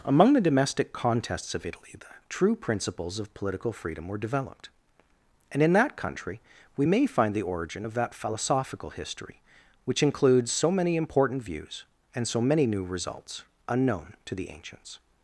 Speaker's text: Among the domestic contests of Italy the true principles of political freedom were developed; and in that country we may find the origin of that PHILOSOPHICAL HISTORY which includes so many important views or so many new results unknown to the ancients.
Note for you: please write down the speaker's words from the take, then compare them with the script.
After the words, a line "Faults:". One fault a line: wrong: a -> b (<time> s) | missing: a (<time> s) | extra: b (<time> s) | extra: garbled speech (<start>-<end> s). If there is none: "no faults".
Among the domestic contests of Italy the true principles of political freedom were developed; and in that country we may find the origin of that PHILOSOPHICAL HISTORY which includes so many important views and so many new results unknown to the ancients.
Faults:
wrong: or -> and (12.1 s)